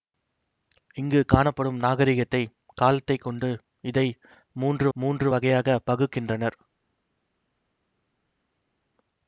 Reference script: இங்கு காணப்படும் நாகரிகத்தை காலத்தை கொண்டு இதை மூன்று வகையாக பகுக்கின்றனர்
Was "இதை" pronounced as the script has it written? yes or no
yes